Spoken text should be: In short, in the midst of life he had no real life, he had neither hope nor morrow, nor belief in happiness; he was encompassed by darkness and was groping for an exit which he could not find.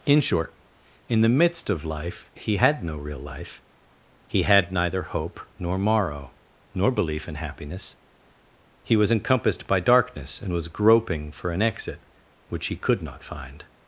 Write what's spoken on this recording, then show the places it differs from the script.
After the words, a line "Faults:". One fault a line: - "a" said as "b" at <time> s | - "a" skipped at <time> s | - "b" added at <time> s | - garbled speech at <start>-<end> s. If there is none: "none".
In short, in the midst of life he had no real life, he had neither hope nor morrow, nor belief in happiness; he was encompassed by darkness and was groping for an exit which he could not find.
Faults:
none